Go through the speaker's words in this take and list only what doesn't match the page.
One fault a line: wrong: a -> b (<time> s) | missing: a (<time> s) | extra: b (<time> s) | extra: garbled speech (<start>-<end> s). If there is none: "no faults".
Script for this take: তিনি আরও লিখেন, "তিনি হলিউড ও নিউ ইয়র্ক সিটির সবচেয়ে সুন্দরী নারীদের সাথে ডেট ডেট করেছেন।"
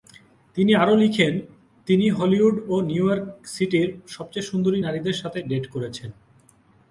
missing: ডেট (5.6 s)